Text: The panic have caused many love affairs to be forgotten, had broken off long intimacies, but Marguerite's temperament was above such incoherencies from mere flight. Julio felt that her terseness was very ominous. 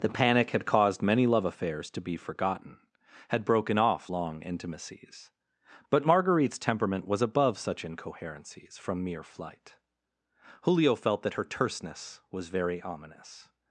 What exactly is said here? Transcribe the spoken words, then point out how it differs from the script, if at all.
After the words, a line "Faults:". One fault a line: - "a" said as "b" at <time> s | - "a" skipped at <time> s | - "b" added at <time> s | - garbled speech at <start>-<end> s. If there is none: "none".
The panic had caused many love affairs to be forgotten, had broken off long intimacies, but Marguerite's temperament was above such incoherencies from mere flight. Julio felt that her terseness was very ominous.
Faults:
- "have" said as "had" at 0.5 s